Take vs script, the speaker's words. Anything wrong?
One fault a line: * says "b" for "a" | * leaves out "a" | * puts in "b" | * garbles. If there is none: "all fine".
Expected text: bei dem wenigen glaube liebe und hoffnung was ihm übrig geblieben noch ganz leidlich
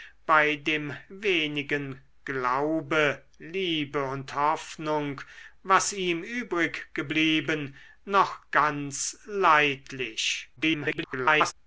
* garbles